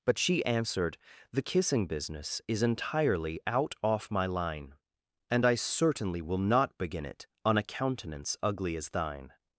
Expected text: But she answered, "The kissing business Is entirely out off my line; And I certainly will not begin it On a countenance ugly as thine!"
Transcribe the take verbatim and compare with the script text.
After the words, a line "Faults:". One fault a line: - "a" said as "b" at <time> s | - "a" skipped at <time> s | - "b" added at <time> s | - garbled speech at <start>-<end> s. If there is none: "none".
But she answered, "The kissing business Is entirely out off my line; And I certainly will not begin it On a countenance ugly as thine!"
Faults:
none